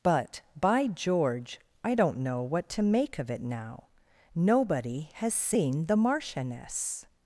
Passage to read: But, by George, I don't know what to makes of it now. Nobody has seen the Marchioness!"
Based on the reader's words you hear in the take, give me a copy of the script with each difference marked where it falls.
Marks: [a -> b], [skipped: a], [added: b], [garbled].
But, by George, I don't know what to [makes -> make] of it now. Nobody has seen the Marchioness!"